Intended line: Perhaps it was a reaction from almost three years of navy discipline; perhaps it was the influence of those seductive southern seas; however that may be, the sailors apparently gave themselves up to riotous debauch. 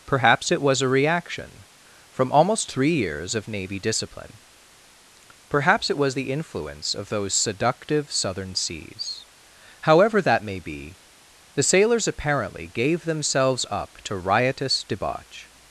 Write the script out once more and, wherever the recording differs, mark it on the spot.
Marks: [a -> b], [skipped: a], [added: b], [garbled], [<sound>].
Perhaps it was a reaction from almost three years of navy discipline; perhaps it was the influence of those seductive southern seas; however that may be, the sailors apparently gave themselves up to riotous debauch.